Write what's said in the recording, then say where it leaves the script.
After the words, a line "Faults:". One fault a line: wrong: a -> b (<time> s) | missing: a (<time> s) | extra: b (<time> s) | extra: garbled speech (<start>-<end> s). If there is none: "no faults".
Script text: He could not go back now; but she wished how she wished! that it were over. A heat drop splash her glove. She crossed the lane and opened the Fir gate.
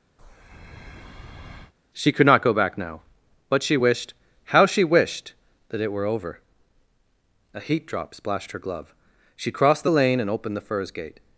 She could not go back now; but she wished how she wished! that it were over. A heat drop splashed her glove. She crossed the lane and opened the Firs gate.
Faults:
wrong: He -> She (1.9 s)
wrong: splash -> splashed (8.1 s)
wrong: Fir -> Firs (10.6 s)